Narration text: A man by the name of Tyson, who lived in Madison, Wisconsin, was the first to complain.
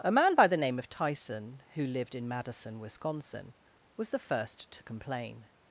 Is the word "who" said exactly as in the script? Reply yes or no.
yes